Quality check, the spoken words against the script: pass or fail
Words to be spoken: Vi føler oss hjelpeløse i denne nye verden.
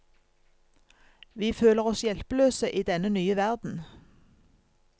pass